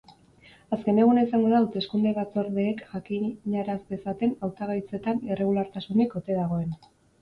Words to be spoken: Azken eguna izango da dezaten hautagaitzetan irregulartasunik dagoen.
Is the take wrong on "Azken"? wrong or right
right